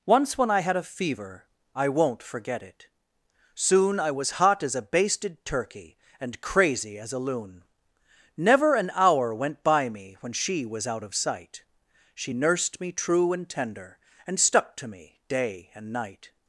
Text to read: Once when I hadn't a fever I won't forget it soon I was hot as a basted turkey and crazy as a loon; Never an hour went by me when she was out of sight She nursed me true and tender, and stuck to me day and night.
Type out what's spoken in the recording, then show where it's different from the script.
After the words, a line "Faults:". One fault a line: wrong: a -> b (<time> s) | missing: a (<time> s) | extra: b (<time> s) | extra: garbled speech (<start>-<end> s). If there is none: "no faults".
Once when I had a fever I won't forget it soon I was hot as a basted turkey and crazy as a loon; Never an hour went by me when she was out of sight She nursed me true and tender, and stuck to me day and night.
Faults:
wrong: hadn't -> had (0.6 s)